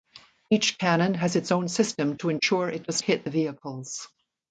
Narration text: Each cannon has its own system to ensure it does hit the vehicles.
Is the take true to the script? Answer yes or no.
yes